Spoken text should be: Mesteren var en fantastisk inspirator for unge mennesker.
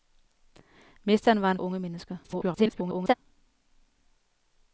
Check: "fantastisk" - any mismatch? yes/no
yes